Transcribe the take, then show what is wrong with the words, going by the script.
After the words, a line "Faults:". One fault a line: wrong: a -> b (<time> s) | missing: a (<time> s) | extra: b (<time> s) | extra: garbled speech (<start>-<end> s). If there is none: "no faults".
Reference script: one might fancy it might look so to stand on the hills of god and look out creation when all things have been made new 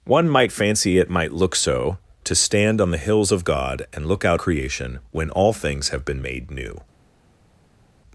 one might fancy it might look so to stand on the hills of god and look out creation when all things have been made new
Faults:
no faults